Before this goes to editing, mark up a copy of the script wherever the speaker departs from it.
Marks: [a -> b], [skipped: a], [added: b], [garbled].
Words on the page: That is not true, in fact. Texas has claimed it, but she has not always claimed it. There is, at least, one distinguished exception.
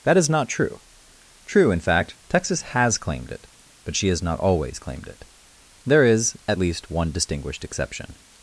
That is not true, [added: true] in fact. Texas has claimed it, but she has not always claimed it. There is, at least, one distinguished exception.